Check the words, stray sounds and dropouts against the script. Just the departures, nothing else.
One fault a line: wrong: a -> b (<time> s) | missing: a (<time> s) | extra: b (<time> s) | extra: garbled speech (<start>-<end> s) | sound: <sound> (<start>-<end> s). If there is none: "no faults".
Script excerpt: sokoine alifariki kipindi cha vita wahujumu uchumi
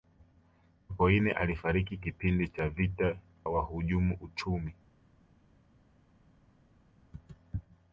no faults